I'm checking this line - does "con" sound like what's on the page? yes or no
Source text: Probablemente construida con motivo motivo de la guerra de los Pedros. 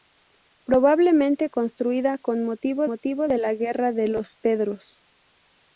yes